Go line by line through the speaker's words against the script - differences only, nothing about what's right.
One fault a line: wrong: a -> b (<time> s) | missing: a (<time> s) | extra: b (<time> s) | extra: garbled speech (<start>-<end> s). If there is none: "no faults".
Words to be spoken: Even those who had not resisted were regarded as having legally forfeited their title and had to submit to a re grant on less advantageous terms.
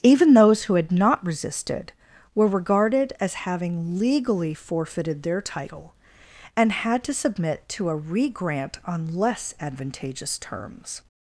no faults